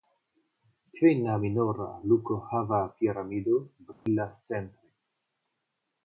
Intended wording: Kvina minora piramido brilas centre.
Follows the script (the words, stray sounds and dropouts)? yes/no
no